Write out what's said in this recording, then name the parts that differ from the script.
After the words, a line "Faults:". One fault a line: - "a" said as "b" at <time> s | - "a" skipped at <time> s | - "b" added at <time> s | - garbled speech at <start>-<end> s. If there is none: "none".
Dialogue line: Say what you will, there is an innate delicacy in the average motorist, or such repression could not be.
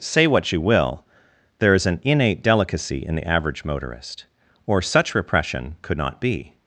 Say what you will, there is an innate delicacy in the average motorist, or such repression could not be.
Faults:
none